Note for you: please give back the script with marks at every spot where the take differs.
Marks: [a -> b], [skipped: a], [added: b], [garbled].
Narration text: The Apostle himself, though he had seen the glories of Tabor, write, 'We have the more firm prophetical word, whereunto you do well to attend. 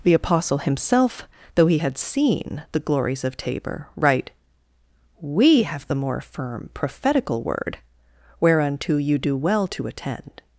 The Apostle himself, though he had seen the glories of Tabor, write, 'We have the more firm prophetical word, whereunto you do well to attend.